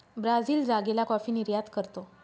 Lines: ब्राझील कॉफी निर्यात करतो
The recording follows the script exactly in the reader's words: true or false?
false